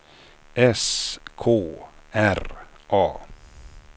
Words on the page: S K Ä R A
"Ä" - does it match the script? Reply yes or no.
no